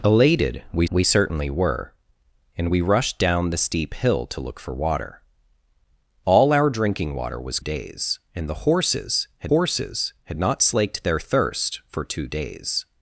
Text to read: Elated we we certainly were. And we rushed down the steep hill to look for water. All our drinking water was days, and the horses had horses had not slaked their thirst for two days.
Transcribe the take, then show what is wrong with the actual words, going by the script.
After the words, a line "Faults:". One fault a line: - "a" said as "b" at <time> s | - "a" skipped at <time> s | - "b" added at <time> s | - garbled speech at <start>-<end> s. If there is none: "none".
Elated we we certainly were. And we rushed down the steep hill to look for water. All our drinking water was days, and the horses had horses had not slaked their thirst for two days.
Faults:
none